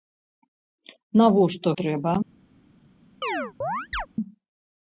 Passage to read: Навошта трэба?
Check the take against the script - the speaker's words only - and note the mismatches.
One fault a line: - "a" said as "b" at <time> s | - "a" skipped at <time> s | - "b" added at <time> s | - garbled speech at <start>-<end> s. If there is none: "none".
none